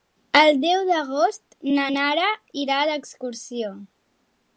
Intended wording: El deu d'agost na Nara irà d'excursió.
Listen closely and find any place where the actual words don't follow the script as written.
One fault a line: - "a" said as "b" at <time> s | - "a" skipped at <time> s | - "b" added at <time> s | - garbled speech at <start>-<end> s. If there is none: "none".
none